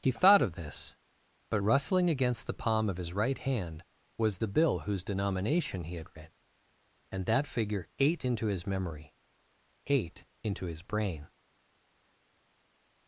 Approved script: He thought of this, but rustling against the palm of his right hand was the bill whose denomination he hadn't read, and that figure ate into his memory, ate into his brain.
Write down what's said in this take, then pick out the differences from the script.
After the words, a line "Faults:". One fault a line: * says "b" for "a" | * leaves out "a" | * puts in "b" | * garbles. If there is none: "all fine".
He thought of this, but rustling against the palm of his right hand was the bill whose denomination he had read, and that figure ate into his memory, ate into his brain.
Faults:
* says "had" for "hadn't"